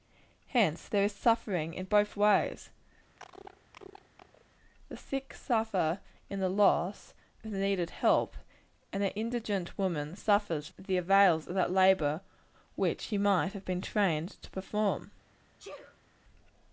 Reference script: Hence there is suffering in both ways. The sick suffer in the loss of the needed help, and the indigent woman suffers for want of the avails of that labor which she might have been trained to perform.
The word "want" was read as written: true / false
false